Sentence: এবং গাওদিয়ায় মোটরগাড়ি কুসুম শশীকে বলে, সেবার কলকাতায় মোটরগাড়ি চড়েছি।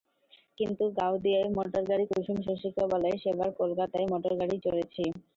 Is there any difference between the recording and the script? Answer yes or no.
yes